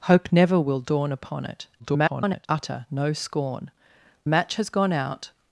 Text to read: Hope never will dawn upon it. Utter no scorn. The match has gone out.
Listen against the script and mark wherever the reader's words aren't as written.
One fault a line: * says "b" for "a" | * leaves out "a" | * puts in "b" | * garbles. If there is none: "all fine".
* garbles
* leaves out "The"